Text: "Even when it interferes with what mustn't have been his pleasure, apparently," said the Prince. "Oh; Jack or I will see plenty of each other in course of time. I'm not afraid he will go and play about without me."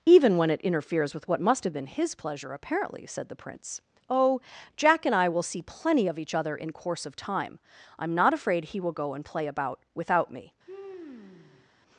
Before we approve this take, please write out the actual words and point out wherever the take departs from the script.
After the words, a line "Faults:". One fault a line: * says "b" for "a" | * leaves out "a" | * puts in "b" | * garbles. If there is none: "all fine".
"Even when it interferes with what must have been his pleasure, apparently," said the Prince. "Oh; Jack and I will see plenty of each other in course of time. I'm not afraid he will go and play about without me."
Faults:
* says "must" for "mustn't"
* says "and" for "or"